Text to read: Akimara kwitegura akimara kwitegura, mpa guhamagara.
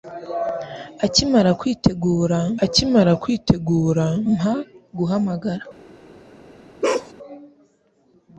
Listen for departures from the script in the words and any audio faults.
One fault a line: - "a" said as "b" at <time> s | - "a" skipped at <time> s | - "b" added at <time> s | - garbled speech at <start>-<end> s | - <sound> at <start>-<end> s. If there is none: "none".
- bark at 6.8-7.1 s